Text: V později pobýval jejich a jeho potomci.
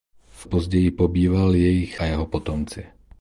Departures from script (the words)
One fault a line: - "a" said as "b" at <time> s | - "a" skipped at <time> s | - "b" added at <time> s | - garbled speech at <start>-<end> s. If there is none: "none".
none